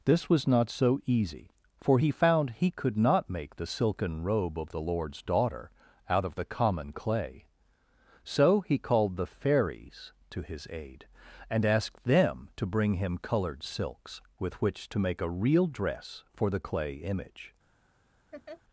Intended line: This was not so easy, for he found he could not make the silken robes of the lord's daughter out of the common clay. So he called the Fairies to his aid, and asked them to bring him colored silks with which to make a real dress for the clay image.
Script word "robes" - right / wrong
wrong